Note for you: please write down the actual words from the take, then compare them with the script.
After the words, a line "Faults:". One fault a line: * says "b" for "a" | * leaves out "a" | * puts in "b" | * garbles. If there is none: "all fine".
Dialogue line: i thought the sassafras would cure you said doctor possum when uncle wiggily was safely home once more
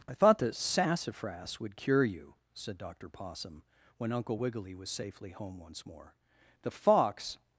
i thought the sassafras would cure you said doctor possum when uncle wiggily was safely home once more the fox
Faults:
* puts in "the fox"